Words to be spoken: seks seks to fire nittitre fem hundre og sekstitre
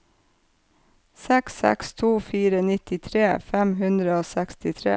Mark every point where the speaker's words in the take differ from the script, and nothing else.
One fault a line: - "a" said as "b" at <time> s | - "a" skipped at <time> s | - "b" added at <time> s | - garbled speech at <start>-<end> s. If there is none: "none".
none